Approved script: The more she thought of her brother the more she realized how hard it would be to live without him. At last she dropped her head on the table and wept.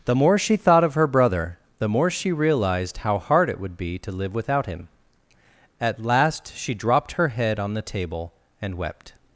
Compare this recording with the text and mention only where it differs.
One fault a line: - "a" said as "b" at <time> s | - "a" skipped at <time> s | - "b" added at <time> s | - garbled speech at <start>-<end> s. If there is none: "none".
none